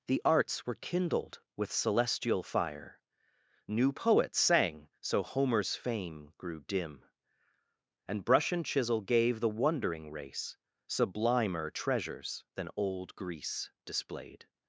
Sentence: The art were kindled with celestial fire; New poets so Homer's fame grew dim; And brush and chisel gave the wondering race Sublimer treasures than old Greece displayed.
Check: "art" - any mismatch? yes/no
yes